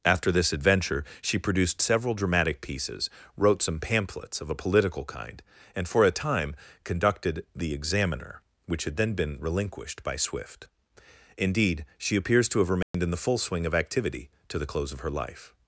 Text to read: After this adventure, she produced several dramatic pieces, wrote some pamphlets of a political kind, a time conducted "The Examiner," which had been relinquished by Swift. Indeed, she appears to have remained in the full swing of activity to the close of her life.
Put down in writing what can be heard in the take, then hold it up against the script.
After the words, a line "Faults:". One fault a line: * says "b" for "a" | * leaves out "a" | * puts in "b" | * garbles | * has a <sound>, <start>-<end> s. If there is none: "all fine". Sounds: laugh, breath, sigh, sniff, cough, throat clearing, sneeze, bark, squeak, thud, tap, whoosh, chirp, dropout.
After this adventure, she produced several dramatic pieces, wrote some pamphlets of a political kind, and for a time conducted "The Examiner," which had then been relinquished by Swift. Indeed, she appears to have remained in the full swing of activity to the close of her life.
Faults:
* puts in "and for"
* puts in "then"
* has a dropout, 12.8-12.9 s